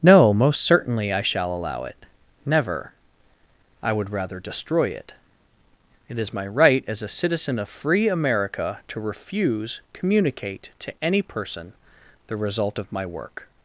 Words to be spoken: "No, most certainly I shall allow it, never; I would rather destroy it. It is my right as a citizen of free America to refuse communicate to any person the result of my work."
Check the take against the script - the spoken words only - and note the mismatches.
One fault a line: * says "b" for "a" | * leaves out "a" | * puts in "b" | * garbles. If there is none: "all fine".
all fine